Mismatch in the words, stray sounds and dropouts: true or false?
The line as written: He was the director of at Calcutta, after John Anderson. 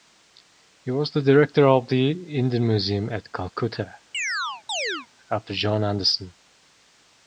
true